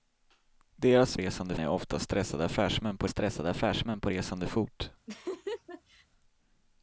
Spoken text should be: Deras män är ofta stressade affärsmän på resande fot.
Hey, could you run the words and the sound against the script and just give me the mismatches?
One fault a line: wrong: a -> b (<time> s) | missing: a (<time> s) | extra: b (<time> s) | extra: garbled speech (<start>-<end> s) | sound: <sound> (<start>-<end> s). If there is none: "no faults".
wrong: män -> resande (1.2 s)
extra: stressade affärsmän på (3.1 s)
sound: laugh (5.1-6.1 s)